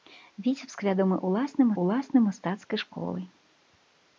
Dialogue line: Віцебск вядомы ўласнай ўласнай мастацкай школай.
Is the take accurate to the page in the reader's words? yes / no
yes